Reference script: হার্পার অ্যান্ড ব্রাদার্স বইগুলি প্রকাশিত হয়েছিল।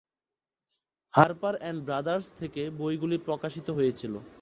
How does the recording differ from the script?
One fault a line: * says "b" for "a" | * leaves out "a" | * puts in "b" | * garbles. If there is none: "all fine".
* puts in "থেকে"